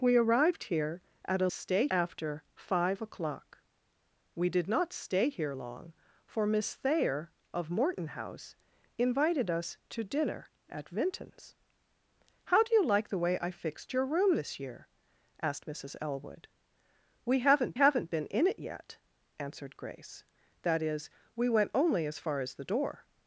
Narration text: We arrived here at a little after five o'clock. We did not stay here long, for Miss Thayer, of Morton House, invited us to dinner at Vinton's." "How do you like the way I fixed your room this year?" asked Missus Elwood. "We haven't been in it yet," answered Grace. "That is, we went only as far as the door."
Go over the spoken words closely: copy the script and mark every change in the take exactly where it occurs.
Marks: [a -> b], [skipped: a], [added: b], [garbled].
We arrived here at a [little -> stay] after five o'clock. We did not stay here long, for Miss Thayer, of Morton House, invited us to dinner at Vinton's." "How do you like the way I fixed your room this year?" asked Missus Elwood. "We haven't [added: haven't] been in it yet," answered Grace. "That is, we went only as far as the door."